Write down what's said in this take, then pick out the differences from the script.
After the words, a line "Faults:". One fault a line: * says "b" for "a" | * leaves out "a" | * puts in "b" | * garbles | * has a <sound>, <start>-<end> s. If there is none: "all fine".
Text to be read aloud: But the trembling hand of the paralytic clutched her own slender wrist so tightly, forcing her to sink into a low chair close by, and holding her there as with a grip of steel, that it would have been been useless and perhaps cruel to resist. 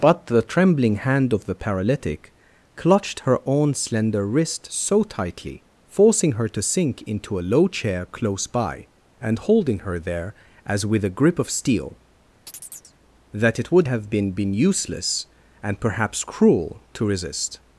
But the trembling hand of the paralytic clutched her own slender wrist so tightly, forcing her to sink into a low chair close by, and holding her there as with a grip of steel, that it would have been been useless and perhaps cruel to resist.
Faults:
* has a chirp, 12.5-12.9 s